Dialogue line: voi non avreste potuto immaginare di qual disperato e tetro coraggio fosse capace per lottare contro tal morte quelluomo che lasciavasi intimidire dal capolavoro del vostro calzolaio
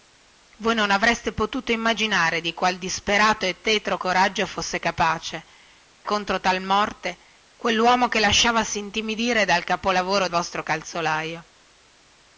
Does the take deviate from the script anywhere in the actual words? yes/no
yes